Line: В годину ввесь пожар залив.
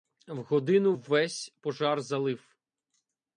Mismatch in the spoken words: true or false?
false